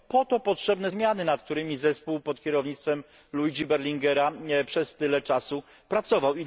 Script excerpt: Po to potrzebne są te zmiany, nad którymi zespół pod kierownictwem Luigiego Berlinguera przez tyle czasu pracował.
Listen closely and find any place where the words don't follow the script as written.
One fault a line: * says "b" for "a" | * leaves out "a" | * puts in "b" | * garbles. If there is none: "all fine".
* leaves out "są te"